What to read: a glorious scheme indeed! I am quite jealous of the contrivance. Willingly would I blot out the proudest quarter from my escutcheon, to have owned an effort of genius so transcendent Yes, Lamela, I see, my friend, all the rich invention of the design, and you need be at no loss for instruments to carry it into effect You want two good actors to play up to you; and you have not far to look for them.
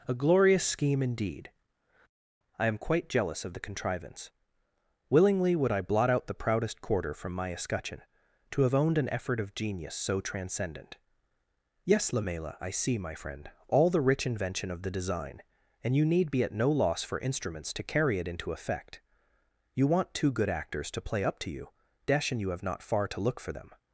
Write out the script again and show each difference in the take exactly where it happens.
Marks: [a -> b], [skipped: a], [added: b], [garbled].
a glorious scheme indeed! I am quite jealous of the contrivance. Willingly would I blot out the proudest quarter from my escutcheon, to have owned an effort of genius so transcendent Yes, Lamela, I see, my friend, all the rich invention of the design, and you need be at no loss for instruments to carry it into effect You want two good actors to play up to you; [added: dash] and you have not far to look for them.